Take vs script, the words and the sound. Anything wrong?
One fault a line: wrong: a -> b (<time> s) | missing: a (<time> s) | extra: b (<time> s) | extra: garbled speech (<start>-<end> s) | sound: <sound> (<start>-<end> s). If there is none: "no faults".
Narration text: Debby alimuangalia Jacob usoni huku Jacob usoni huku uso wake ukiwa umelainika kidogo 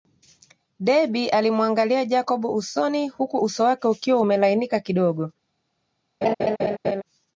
missing: Jacob usoni huku (3.4 s)
sound: laugh (6.2-7.0 s)